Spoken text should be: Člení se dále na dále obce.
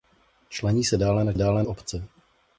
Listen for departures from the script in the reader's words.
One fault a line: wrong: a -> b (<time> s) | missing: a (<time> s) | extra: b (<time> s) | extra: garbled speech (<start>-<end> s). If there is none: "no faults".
no faults